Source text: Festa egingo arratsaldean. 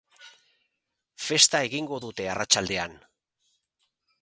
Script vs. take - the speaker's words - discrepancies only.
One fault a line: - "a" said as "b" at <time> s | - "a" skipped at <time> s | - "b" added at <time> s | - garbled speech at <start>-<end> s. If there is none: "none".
- "dute" added at 2.1 s